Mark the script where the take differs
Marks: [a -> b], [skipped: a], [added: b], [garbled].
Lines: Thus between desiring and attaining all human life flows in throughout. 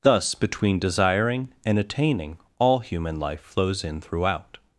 Thus between desiring and attaining all human life flows in throughout.